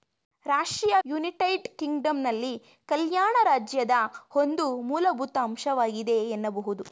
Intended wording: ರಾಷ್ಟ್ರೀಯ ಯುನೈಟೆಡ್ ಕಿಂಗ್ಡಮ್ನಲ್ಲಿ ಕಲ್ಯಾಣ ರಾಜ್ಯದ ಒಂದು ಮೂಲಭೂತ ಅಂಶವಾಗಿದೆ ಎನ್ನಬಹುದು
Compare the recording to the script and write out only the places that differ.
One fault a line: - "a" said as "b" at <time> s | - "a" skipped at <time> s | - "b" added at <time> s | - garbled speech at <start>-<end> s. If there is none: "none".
none